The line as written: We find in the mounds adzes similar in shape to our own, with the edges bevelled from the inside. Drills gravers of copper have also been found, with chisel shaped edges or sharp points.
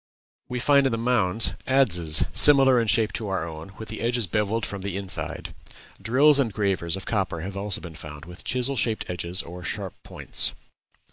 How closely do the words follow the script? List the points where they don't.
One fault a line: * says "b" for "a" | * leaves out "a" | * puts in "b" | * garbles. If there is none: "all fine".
* puts in "and"